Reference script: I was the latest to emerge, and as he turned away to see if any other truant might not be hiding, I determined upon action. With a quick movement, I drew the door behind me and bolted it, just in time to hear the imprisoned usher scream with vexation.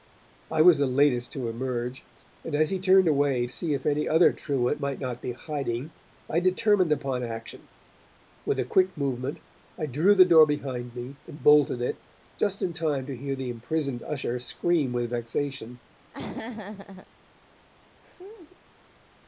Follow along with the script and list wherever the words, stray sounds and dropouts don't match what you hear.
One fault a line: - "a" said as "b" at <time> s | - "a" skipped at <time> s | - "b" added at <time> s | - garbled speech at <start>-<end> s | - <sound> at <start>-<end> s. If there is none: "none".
- "to" skipped at 3.5 s
- laugh at 16.1-17.1 s
- laugh at 18.0-18.6 s